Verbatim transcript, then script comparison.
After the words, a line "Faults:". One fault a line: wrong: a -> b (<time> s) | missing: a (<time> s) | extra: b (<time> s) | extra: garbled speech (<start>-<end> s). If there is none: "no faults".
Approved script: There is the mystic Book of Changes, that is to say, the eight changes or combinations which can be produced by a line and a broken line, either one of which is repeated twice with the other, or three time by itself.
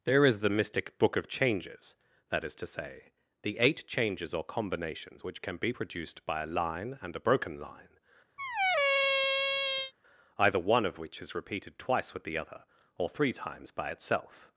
There is the mystic Book of Changes, that is to say, the eight changes or combinations which can be produced by a line and a broken line, either one of which is repeated twice with the other, or three times by itself.
Faults:
wrong: time -> times (13.3 s)